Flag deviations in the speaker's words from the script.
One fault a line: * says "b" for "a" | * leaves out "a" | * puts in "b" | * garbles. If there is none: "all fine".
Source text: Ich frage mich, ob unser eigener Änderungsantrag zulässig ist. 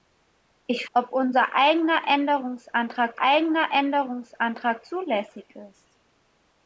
* says "ob unser eigener Änderungsantrag" for "frage mich ob unser"